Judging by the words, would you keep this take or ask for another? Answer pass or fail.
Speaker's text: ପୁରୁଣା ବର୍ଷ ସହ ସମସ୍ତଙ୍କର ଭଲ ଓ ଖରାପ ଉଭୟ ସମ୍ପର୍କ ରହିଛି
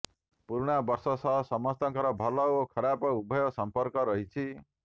pass